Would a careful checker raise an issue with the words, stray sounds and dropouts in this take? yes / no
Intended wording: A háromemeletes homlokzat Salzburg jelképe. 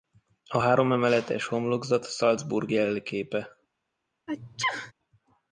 yes